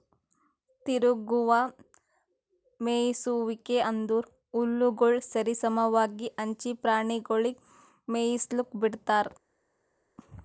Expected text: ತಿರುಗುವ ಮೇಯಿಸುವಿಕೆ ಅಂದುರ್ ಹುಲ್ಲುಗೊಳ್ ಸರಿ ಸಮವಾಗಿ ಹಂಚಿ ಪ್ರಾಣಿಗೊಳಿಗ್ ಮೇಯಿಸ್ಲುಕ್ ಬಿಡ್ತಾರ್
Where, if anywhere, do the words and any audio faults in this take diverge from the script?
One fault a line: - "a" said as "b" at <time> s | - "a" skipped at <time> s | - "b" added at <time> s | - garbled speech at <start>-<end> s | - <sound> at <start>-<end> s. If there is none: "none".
none